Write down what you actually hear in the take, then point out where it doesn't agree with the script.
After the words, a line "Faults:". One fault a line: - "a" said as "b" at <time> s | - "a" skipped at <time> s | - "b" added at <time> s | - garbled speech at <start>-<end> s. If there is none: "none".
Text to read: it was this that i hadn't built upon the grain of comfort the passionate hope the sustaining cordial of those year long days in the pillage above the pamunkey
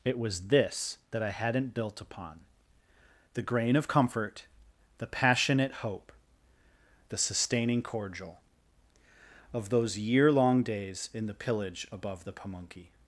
it was this that i hadn't built upon the grain of comfort the passionate hope the sustaining cordial of those year long days in the pillage above the pamunkey
Faults:
none